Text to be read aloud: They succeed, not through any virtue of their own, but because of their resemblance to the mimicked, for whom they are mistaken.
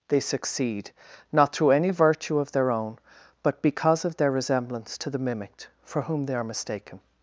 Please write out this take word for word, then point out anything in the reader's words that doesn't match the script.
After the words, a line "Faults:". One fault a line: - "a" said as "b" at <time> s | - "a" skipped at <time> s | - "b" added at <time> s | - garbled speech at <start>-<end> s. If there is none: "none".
They succeed, not through any virtue of their own, but because of their resemblance to the mimicked, for whom they are mistaken.
Faults:
none